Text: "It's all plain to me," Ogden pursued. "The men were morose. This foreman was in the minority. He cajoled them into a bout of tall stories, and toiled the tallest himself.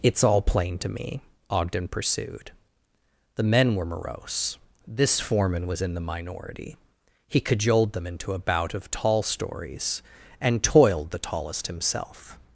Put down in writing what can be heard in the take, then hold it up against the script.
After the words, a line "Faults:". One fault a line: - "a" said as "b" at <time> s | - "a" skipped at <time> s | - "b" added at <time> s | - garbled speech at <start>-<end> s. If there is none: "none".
"It's all plain to me," Ogden pursued. "The men were morose. This foreman was in the minority. He cajoled them into a bout of tall stories, and toiled the tallest himself.
Faults:
none